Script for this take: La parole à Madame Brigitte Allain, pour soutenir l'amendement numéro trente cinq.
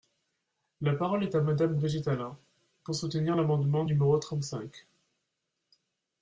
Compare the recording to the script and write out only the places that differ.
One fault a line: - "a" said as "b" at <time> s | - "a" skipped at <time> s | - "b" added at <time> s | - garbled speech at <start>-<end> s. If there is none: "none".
- "est" added at 1.2 s